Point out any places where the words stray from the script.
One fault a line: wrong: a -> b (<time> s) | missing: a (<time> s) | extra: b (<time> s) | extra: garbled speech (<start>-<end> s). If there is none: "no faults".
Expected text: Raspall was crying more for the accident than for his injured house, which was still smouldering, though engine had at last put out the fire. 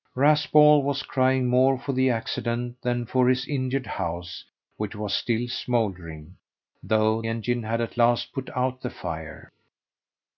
no faults